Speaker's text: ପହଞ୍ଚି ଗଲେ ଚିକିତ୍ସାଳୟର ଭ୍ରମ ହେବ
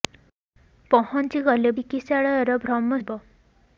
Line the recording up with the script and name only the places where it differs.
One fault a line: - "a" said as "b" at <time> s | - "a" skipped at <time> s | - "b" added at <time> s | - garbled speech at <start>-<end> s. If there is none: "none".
none